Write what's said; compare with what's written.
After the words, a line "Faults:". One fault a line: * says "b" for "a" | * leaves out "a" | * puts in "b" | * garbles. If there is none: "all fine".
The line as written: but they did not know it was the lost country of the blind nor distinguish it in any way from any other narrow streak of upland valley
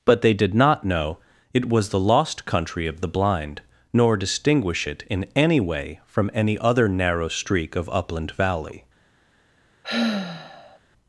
but they did not know it was the lost country of the blind nor distinguish it in any way from any other narrow streak of upland valley
Faults:
all fine